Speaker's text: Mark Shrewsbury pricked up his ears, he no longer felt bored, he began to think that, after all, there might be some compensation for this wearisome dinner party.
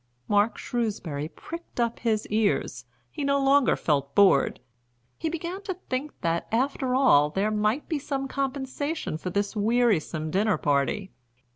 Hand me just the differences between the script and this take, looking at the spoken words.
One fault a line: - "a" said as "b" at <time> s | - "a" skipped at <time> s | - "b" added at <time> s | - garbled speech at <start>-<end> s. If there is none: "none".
none